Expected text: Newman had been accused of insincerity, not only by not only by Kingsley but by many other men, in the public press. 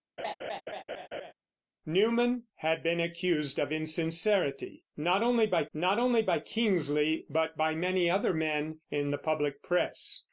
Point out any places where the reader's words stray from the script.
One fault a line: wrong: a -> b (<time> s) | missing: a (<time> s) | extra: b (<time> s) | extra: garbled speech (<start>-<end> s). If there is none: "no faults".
no faults